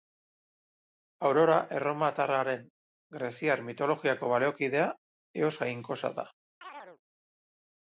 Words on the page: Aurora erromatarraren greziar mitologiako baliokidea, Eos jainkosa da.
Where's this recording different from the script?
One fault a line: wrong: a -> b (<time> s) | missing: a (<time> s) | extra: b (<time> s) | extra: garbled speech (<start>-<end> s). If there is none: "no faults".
no faults